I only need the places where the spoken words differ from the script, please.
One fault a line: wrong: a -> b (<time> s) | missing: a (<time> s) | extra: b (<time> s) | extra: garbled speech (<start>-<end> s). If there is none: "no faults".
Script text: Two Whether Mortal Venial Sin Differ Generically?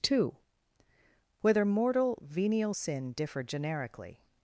no faults